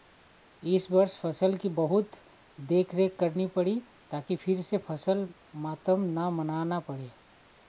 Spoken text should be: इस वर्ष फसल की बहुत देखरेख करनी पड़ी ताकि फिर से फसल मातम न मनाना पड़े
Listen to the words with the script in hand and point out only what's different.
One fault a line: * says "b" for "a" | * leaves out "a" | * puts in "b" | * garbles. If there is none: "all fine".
all fine